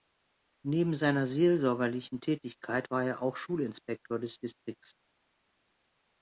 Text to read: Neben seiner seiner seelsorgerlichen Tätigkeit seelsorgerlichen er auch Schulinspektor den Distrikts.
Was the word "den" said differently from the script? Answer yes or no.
yes